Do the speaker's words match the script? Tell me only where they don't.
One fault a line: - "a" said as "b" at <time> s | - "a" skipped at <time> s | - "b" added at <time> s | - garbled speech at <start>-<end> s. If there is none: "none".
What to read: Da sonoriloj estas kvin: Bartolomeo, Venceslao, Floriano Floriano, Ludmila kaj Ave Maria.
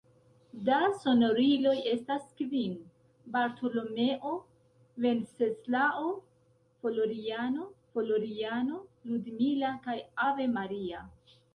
none